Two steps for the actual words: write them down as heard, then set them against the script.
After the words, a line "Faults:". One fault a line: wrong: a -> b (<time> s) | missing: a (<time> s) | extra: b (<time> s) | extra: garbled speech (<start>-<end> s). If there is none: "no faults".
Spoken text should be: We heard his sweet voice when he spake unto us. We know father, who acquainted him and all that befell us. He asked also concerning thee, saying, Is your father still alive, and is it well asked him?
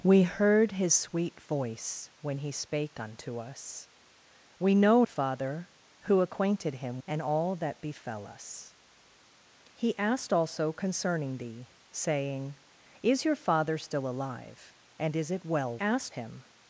We heard his sweet voice when he spake unto us. We know father, who acquainted him and all that befell us. He asked also concerning thee, saying, Is your father still alive, and is it well asked him?
Faults:
no faults